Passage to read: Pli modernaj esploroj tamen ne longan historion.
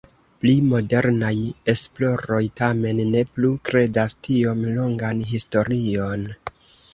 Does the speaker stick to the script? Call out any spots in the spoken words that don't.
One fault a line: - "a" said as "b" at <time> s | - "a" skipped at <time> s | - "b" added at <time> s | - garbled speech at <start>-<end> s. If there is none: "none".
- "plu kredas tiom" added at 3.3 s